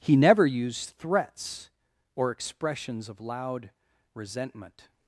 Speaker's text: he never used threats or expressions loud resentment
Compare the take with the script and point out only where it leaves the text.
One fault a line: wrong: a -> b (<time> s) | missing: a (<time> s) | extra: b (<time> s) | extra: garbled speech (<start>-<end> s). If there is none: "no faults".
extra: of (3.1 s)